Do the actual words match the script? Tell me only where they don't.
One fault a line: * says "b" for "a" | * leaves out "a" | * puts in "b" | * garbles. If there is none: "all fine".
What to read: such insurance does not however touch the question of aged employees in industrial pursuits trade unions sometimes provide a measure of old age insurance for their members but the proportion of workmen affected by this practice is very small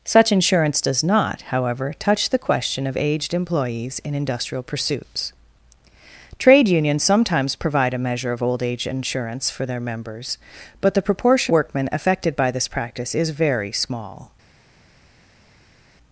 * leaves out "of"